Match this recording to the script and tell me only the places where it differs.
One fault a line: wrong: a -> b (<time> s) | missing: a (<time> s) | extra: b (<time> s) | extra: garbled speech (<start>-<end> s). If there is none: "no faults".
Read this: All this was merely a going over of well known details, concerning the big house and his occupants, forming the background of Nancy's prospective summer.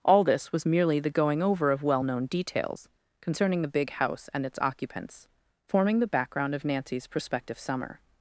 wrong: a -> the (1.0 s)
wrong: his -> its (4.4 s)